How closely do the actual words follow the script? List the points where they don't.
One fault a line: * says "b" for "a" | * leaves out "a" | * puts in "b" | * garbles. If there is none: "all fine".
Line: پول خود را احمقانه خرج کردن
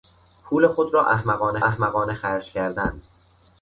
* puts in "احمقانه"